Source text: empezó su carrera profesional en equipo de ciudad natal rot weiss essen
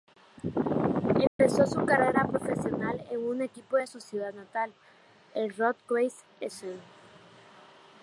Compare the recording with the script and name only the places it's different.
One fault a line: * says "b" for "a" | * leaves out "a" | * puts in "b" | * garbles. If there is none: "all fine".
* puts in "un"
* puts in "su"
* puts in "el"